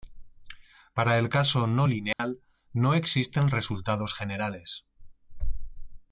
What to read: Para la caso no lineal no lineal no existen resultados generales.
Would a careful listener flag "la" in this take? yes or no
yes